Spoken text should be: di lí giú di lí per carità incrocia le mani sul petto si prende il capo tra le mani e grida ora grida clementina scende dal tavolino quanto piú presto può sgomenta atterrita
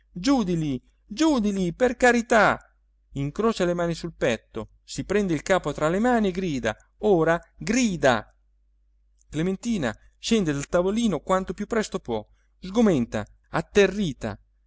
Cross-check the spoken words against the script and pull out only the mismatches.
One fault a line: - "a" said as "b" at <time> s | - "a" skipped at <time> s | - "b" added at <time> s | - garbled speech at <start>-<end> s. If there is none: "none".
none